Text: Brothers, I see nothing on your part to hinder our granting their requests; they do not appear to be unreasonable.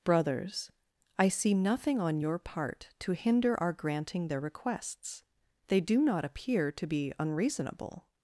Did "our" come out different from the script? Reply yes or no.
no